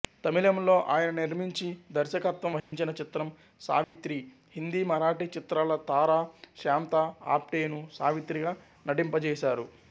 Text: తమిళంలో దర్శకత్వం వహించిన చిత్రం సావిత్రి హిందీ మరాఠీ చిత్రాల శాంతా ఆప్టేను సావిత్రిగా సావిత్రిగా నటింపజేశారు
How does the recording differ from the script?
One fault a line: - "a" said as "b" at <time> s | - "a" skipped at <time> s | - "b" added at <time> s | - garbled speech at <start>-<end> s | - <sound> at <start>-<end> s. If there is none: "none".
- "ఆయన నిర్మించి" added at 0.9 s
- dropout at 2.6-2.7 s
- dropout at 3.8-4.0 s
- "తార" added at 5.9 s
- "సావిత్రిగా" skipped at 8.5 s